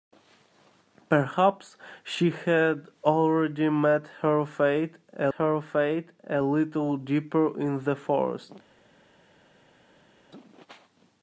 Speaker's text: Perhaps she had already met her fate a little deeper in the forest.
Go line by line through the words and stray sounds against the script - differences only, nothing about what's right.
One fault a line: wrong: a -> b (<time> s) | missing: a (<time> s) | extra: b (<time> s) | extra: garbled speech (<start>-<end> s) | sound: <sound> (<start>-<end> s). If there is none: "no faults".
extra: her fate a (5.4 s)